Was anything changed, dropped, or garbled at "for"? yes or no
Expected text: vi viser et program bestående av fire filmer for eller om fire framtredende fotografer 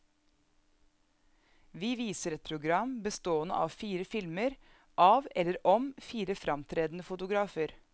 yes